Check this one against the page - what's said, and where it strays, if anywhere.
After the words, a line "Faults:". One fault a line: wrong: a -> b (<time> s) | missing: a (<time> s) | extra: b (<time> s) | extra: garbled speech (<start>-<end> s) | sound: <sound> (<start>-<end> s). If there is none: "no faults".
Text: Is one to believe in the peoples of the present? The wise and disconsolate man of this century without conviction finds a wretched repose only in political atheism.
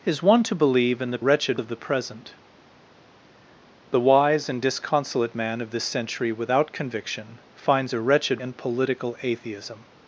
Is one to believe in the wretched of the present? The wise and disconsolate man of this century without conviction finds a wretched in political atheism.
Faults:
wrong: peoples -> wretched (1.2 s)
missing: repose only (8.4 s)